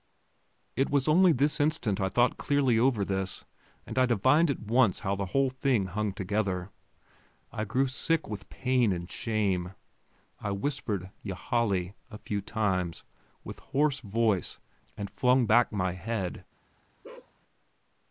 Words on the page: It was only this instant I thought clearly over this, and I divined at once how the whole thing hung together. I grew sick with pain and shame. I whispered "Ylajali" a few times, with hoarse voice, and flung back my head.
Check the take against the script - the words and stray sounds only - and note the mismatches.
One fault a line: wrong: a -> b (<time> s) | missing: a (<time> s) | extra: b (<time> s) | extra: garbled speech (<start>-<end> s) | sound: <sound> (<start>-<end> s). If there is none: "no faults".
sound: bark (17.0-17.3 s)